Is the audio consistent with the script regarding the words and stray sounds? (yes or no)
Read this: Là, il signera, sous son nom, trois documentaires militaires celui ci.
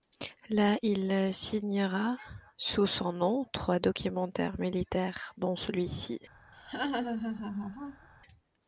no